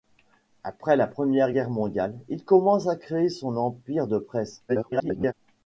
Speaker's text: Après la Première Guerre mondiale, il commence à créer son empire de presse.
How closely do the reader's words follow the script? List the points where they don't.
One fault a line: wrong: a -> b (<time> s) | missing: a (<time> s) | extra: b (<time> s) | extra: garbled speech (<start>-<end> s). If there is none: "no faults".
extra: garbled speech (4.7-5.3 s)